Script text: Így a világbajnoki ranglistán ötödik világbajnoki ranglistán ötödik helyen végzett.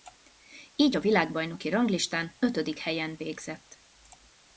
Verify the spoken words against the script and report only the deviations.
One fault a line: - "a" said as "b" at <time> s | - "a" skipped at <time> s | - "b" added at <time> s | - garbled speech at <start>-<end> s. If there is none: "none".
- "világbajnoki ranglistán ötödik" skipped at 2.8 s